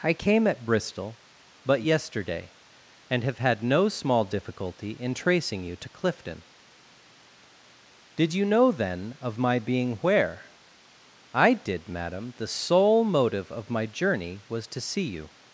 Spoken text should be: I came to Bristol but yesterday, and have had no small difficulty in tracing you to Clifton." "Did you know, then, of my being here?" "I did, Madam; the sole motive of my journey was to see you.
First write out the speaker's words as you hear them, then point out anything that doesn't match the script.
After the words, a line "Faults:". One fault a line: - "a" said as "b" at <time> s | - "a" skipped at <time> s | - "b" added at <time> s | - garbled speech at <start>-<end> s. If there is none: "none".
I came at Bristol but yesterday, and have had no small difficulty in tracing you to Clifton." "Did you know, then, of my being where?" "I did, Madam; the sole motive of my journey was to see you.
Faults:
- "to" said as "at" at 0.5 s
- "here" said as "where" at 10.0 s